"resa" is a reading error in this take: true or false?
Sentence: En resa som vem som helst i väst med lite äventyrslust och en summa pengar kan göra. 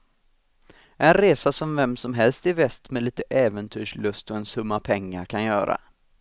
false